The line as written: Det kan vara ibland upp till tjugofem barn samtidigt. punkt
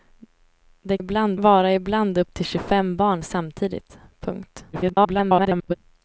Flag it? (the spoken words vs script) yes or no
yes